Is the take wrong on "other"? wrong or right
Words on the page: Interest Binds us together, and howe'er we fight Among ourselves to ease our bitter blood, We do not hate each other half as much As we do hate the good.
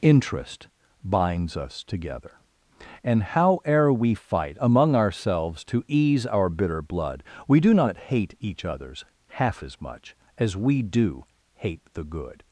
wrong